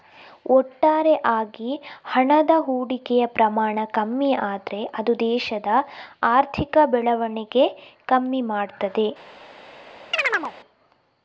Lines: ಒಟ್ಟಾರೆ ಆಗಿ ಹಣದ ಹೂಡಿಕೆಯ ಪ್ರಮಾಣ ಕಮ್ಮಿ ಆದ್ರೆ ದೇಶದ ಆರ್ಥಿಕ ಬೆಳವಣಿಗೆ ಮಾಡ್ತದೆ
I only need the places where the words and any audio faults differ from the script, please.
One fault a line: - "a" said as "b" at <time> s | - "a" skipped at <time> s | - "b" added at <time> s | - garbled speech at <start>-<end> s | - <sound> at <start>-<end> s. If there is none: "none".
- "ಅದು" added at 5.0 s
- "ಕಮ್ಮಿ" added at 8.1 s
- chirp at 10.1-10.5 s